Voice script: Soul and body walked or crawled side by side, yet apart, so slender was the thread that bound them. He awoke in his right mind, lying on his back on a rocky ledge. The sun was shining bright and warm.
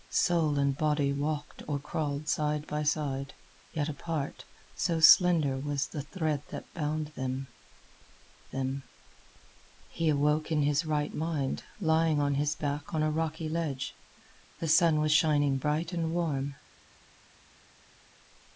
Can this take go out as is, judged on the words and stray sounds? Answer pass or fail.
fail